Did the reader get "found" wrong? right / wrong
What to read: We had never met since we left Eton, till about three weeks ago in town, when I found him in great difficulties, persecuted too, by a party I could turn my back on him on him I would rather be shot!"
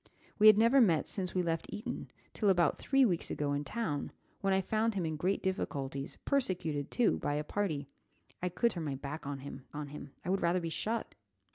right